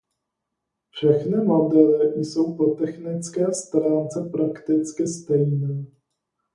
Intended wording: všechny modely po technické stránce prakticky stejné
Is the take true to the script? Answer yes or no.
no